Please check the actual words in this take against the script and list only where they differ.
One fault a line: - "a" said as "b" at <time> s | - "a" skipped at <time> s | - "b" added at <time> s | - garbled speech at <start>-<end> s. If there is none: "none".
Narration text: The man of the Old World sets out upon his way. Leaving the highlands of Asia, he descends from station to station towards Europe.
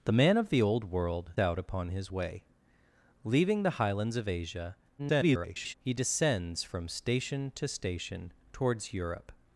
- "sets" skipped at 1.3 s
- garbled speech at 5.0-5.7 s